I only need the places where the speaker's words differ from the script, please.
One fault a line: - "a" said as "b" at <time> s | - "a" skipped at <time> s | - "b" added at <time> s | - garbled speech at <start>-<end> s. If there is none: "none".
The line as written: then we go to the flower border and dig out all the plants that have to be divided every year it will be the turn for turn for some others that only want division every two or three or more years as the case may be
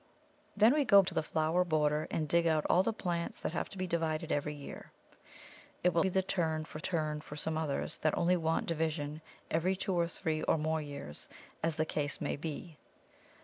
none